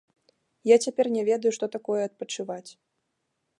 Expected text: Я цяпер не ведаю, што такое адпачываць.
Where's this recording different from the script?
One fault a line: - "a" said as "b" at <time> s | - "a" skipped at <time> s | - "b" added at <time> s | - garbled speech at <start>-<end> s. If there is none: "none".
none